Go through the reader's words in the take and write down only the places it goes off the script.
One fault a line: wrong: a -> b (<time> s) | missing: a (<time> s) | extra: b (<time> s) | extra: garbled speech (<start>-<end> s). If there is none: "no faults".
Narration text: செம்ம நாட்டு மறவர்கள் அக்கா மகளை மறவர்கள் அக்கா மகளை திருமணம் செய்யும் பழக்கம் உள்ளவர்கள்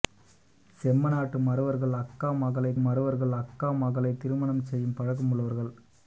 no faults